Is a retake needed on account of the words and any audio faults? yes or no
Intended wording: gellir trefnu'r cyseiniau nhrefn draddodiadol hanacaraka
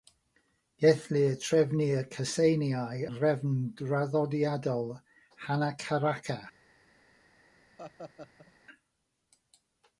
yes